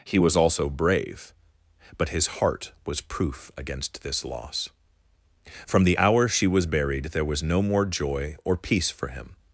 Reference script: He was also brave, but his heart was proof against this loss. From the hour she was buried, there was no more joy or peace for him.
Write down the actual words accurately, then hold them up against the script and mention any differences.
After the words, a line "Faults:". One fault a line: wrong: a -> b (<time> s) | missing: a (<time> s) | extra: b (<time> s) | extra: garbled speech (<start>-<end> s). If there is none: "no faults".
He was also brave, but his heart was proof against this loss. From the hour she was buried, there was no more joy or peace for him.
Faults:
no faults